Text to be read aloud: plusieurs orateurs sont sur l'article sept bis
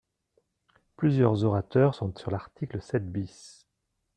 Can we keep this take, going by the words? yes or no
yes